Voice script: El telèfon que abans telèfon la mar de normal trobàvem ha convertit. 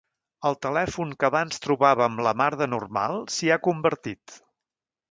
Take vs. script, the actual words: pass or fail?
fail